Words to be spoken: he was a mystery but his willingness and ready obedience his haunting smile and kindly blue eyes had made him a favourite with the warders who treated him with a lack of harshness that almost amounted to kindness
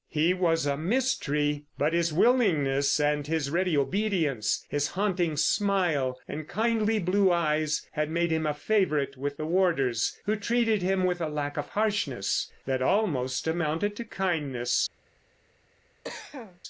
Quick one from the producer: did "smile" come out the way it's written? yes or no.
yes